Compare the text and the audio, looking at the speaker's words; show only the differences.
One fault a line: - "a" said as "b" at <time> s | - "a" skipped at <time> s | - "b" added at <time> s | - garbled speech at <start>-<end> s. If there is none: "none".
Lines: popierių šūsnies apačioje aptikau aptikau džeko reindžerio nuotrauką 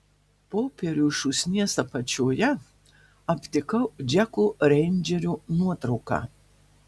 - "aptikau" skipped at 3.8 s